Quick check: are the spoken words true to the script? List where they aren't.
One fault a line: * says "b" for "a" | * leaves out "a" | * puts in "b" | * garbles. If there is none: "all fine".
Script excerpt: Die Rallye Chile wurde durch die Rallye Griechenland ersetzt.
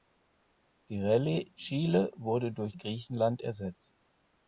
* leaves out "die Rallye"